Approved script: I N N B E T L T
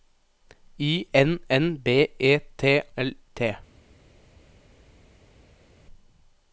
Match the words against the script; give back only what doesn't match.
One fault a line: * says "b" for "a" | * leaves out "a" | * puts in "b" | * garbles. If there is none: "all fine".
all fine